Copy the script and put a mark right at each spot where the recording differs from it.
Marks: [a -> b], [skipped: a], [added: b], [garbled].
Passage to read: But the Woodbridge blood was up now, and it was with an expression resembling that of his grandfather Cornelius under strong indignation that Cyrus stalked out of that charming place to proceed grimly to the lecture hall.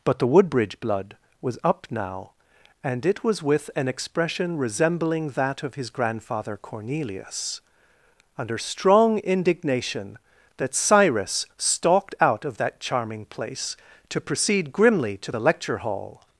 But the Woodbridge blood was up now, and it was with an expression resembling that of his grandfather Cornelius under strong indignation that Cyrus stalked out of that charming place to proceed grimly to the lecture hall.